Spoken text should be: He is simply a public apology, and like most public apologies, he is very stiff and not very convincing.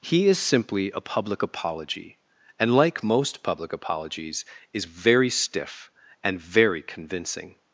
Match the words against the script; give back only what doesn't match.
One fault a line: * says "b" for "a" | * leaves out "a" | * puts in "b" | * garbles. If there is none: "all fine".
* leaves out "he"
* leaves out "not"